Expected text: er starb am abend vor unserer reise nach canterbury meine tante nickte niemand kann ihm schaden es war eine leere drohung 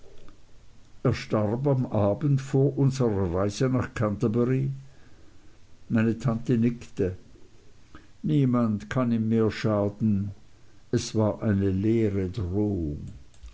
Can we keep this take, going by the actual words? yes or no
no